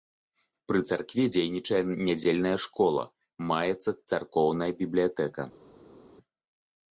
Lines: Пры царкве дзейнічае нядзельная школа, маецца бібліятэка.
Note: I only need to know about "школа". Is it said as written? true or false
true